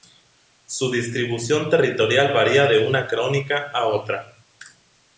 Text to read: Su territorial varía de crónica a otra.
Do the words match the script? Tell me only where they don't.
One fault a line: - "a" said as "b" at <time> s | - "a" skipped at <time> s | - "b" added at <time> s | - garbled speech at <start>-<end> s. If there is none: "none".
- "distribución" added at 0.9 s
- "una" added at 2.9 s